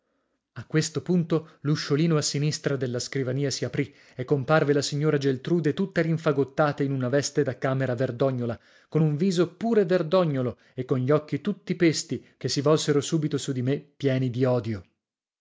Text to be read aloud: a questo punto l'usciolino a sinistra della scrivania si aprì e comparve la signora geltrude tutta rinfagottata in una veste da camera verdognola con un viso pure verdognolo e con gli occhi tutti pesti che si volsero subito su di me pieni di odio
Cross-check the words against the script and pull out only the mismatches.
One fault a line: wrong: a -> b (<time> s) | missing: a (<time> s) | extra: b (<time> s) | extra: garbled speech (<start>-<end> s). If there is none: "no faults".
no faults